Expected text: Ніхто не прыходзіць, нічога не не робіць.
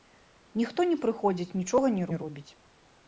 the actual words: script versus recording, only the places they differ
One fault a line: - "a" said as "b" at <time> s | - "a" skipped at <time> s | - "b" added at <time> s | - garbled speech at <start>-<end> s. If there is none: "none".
none